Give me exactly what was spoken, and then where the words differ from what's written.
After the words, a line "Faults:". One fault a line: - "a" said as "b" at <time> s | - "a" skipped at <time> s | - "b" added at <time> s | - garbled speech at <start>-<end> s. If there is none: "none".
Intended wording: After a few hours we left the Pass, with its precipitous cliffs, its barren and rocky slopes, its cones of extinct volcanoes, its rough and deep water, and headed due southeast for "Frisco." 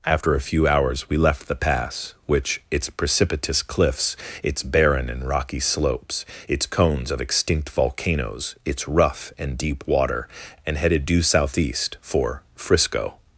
After a few hours we left the Pass, which its precipitous cliffs, its barren and rocky slopes, its cones of extinct volcanoes, its rough and deep water, and headed due southeast for "Frisco."
Faults:
- "with" said as "which" at 2.2 s